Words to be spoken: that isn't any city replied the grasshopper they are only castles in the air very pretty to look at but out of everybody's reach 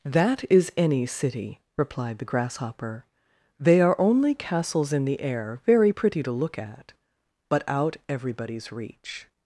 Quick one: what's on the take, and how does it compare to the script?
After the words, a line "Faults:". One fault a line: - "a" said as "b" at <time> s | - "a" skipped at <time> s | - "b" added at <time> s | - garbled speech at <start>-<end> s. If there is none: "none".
that is any city replied the grasshopper they are only castles in the air very pretty to look at but out everybody's reach
Faults:
- "isn't" said as "is" at 0.5 s
- "of" skipped at 8.0 s